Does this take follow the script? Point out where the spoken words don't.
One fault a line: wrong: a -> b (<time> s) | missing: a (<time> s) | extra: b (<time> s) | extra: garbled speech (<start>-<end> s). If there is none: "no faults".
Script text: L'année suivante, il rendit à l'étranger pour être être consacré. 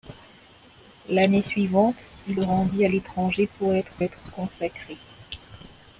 no faults